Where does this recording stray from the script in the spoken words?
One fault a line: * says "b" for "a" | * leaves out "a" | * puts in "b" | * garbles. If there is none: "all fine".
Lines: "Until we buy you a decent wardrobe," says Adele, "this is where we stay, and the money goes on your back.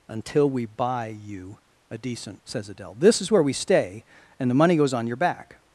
* leaves out "wardrobe"